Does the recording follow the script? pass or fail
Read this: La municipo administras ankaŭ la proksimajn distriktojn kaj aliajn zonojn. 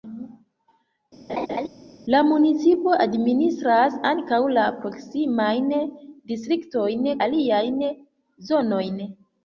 fail